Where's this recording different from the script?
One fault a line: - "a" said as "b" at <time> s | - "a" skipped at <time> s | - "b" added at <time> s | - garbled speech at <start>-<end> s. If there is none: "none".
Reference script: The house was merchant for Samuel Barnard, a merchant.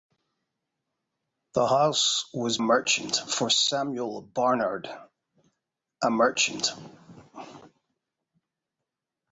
none